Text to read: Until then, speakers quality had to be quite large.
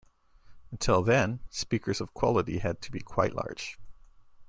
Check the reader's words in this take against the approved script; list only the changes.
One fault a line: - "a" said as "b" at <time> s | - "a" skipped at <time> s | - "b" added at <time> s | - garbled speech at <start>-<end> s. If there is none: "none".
- "of" added at 2.0 s